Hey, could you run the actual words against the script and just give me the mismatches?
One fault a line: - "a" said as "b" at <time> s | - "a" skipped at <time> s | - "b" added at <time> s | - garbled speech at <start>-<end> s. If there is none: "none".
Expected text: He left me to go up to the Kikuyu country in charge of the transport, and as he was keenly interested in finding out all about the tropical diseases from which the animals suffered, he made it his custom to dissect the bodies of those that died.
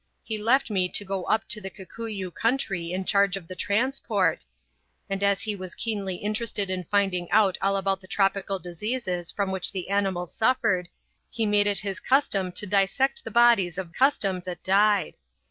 - "those" said as "custom" at 13.9 s